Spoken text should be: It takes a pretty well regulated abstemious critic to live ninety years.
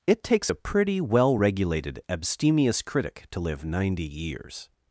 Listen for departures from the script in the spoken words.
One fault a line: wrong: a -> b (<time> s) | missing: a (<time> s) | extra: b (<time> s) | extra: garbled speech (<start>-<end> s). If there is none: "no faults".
no faults